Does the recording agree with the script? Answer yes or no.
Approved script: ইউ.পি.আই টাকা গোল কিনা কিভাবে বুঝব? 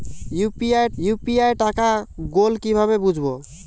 no